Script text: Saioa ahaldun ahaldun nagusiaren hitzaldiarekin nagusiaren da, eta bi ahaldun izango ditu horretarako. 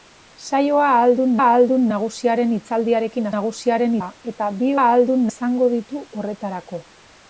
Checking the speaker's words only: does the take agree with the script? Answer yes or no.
yes